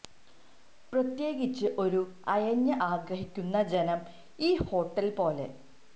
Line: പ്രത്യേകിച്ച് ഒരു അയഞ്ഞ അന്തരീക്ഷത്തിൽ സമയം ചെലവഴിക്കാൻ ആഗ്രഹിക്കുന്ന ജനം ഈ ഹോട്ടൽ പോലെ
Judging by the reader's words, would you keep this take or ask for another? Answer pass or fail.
fail